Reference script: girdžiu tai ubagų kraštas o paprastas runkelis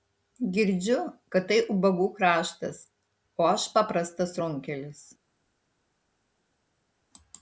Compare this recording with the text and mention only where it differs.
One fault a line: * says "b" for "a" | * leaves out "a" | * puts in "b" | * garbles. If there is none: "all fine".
* puts in "kad"
* puts in "aš"